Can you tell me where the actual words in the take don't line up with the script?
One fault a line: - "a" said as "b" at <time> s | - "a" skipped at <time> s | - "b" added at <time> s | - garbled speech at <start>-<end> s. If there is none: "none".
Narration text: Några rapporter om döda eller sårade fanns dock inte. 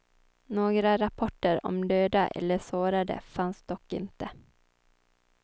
none